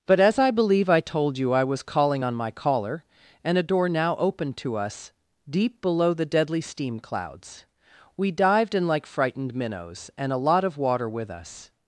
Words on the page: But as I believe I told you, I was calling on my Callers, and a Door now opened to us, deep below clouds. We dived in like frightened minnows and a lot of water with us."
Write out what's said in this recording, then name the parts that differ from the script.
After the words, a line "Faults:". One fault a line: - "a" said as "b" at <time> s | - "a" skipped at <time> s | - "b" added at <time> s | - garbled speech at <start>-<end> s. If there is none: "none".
But as I believe I told you, I was calling on my Caller, and a Door now opened to us, deep below the deadly steam clouds. We dived in like frightened minnows and a lot of water with us."
Faults:
- "Callers" said as "Caller" at 2.5 s
- "the deadly steam" added at 6.1 s